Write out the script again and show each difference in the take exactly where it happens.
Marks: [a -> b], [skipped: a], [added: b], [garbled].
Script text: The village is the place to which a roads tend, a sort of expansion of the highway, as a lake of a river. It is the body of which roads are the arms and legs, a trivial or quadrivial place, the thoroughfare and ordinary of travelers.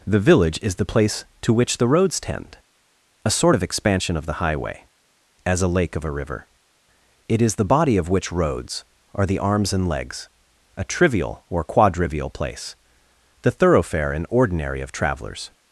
The village is the place to which [a -> the] roads tend, a sort of expansion of the highway, as a lake of a river. It is the body of which roads are the arms and legs, a trivial or quadrivial place, the thoroughfare and ordinary of travelers.